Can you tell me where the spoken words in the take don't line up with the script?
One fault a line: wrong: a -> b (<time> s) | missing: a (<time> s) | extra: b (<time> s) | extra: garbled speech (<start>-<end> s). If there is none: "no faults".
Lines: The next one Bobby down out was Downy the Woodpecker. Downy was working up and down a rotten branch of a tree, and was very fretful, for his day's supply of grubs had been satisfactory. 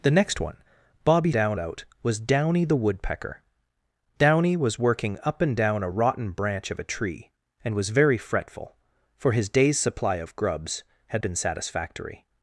no faults